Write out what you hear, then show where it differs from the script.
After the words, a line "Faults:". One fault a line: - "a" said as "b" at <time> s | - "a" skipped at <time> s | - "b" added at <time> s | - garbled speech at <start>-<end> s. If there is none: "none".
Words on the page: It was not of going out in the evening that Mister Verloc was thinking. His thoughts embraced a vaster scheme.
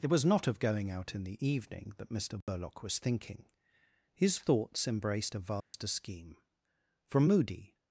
It was not of going out in the evening that Mister Verloc was thinking. His thoughts embraced a vaster scheme. From moody
Faults:
- "From moody" added at 7.1 s